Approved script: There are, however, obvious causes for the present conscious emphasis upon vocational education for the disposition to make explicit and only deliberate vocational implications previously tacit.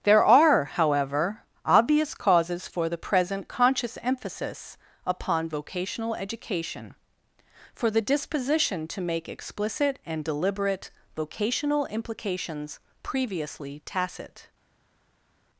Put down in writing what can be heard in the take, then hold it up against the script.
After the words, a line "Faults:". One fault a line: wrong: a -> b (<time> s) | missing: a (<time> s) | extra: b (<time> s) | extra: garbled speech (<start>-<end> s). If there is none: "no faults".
There are, however, obvious causes for the present conscious emphasis upon vocational education for the disposition to make explicit and deliberate vocational implications previously tacit.
Faults:
missing: only (10.2 s)